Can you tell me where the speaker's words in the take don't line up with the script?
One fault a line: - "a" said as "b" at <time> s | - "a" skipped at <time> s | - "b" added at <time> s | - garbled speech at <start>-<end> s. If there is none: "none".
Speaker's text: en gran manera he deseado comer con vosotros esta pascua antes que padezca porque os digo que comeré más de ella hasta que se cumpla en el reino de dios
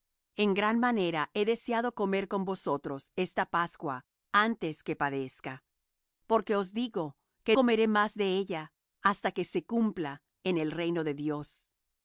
none